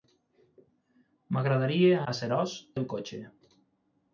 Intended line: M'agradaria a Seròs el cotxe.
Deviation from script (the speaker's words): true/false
false